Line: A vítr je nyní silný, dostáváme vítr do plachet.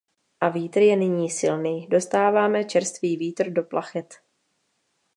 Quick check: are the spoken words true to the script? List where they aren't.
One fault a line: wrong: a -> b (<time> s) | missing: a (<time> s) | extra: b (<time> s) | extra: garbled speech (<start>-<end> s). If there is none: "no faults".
extra: čerstvý (2.6 s)